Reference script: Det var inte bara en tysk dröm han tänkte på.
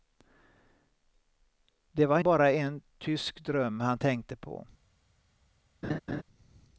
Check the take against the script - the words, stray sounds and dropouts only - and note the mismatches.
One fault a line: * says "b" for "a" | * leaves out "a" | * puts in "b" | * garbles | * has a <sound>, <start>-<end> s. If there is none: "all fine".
* leaves out "inte"
* has a laugh, 5.8-6.2 s